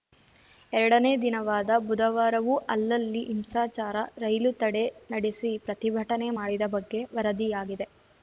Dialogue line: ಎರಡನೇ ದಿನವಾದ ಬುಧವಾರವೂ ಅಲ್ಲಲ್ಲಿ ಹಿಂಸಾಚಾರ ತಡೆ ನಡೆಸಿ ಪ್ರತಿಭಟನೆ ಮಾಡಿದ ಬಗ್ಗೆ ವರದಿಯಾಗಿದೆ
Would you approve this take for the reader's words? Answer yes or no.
no